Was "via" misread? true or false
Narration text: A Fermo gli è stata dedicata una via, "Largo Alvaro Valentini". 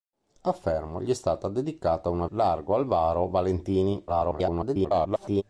true